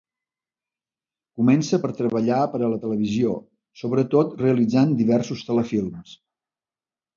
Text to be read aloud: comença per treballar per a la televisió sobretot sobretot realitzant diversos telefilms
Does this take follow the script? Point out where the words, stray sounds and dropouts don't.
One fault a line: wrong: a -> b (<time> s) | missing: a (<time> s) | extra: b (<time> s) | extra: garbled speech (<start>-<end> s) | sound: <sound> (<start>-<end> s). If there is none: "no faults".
missing: sobretot (4.4 s)